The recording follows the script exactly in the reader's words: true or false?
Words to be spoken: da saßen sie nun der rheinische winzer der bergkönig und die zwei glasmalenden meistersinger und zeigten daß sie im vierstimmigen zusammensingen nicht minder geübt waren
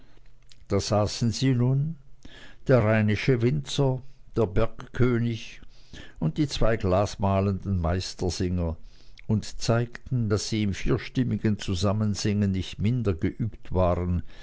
true